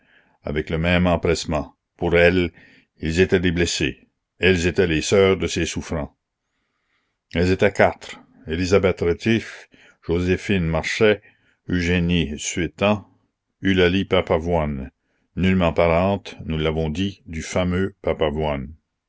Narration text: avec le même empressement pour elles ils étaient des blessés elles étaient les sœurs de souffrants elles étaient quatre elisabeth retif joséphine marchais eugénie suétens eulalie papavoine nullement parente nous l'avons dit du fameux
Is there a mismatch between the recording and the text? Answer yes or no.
yes